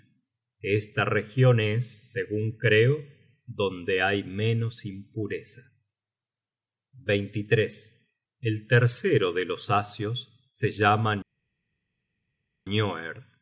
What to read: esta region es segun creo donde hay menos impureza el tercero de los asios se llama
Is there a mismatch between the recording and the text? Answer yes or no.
no